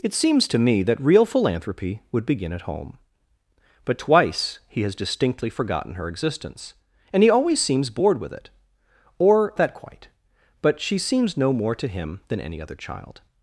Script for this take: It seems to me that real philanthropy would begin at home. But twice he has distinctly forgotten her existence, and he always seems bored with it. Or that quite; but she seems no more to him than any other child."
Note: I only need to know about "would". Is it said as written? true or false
true